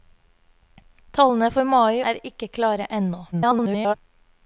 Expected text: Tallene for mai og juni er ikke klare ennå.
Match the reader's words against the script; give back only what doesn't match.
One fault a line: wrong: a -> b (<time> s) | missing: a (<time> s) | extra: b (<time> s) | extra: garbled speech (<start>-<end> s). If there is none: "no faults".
missing: og juni (2.0 s)
extra: garbled speech (3.3-3.9 s)